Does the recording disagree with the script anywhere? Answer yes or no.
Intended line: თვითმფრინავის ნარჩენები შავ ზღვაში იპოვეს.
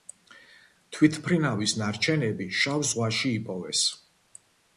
no